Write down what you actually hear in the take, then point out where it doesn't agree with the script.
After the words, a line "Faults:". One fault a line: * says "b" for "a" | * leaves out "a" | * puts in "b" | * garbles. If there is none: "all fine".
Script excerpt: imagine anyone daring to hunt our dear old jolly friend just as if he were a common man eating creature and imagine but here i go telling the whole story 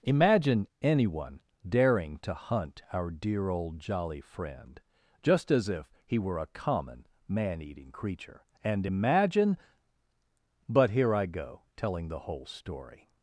imagine anyone daring to hunt our dear old jolly friend just as if he were a common man eating creature and imagine but here i go telling the whole story
Faults:
all fine